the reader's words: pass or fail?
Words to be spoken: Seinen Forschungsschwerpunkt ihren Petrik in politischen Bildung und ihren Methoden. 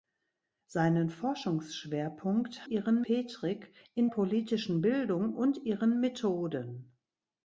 pass